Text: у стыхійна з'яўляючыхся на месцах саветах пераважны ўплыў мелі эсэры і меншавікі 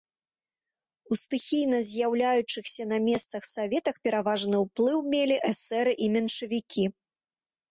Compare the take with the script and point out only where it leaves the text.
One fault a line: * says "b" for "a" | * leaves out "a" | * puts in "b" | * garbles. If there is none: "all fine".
all fine